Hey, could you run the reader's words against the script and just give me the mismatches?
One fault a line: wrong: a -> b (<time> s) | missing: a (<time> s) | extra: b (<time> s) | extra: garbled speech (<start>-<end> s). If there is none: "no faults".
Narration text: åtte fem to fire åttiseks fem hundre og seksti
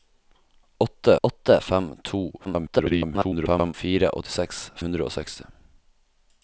extra: åtte (1.2 s)
extra: garbled speech (2.4-3.7 s)
missing: fem (4.6 s)